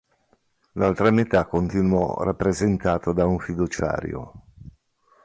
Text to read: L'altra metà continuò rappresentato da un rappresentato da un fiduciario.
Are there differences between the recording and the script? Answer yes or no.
yes